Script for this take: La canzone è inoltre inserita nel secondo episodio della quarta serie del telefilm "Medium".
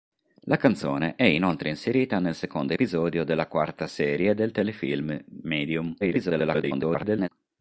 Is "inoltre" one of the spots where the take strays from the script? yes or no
no